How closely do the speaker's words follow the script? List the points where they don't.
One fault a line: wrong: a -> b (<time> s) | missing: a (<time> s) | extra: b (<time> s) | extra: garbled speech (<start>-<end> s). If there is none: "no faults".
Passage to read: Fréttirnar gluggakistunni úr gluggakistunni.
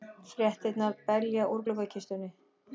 wrong: gluggakistunni -> belja (1.1 s)